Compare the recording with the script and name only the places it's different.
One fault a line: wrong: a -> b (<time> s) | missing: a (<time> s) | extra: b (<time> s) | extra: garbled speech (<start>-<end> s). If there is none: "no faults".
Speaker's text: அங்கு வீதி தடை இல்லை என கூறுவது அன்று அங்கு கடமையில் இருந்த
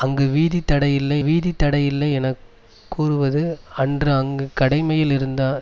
extra: வீதி தடை இல்லை (1.2 s)